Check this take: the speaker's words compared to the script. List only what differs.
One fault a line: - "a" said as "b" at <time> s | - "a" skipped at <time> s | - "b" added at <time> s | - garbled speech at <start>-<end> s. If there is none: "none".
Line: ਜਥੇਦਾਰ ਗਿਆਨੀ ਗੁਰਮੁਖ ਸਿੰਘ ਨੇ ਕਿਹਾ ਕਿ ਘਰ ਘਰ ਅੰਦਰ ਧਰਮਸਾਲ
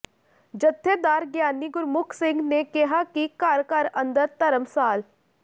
none